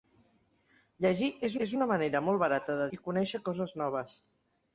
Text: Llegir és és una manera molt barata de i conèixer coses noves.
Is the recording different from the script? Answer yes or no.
no